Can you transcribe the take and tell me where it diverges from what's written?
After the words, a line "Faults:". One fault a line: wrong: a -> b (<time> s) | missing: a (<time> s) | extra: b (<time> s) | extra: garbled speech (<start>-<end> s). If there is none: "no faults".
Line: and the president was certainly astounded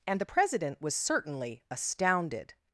and the president was certainly astounded
Faults:
no faults